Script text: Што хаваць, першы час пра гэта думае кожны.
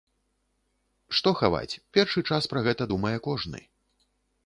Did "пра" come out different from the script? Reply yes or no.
no